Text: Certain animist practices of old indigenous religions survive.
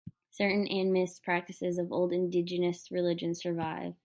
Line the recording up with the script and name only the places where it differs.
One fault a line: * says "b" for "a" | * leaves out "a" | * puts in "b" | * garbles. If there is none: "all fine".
all fine